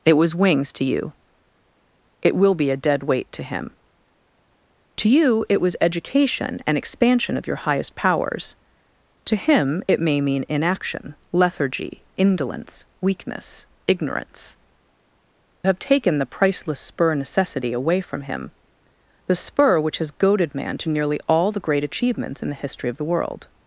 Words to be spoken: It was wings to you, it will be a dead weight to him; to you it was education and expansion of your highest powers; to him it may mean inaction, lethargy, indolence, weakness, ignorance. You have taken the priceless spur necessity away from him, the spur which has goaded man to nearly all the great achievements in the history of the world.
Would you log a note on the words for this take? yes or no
yes